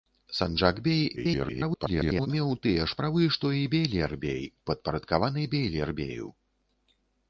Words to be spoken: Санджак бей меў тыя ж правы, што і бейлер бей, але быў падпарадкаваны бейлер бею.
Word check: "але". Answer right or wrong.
wrong